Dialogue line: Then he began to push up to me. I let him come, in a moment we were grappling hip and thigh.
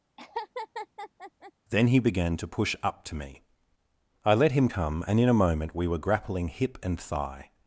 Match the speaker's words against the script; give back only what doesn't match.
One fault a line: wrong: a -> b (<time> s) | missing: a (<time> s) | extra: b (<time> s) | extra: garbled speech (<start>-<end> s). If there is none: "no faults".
extra: and (5.1 s)